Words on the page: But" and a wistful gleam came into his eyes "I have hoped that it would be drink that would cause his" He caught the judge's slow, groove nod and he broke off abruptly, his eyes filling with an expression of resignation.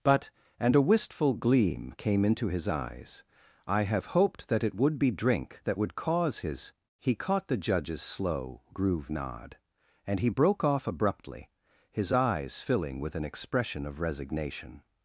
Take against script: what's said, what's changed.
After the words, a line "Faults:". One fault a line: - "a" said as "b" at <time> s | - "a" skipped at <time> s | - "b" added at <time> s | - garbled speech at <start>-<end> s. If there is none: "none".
But" and a wistful gleam came into his eyes "I have hoped that it would be drink that would cause his" He caught the judge's slow, groove nod and he broke off abruptly, his eyes filling with an expression of resignation.
Faults:
none